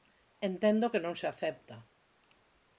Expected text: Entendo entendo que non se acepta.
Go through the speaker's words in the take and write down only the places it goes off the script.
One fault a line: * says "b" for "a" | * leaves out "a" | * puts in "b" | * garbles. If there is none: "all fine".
* leaves out "entendo"